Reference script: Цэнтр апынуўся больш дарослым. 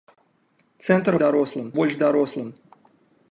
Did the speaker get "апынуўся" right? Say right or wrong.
wrong